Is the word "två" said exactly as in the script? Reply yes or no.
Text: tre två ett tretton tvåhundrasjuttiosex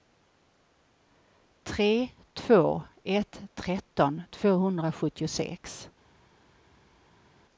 yes